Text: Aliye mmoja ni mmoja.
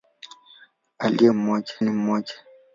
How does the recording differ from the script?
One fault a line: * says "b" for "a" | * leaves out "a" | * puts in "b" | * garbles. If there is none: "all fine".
all fine